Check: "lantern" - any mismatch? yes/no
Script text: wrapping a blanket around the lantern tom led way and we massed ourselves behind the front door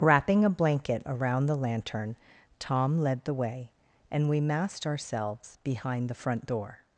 no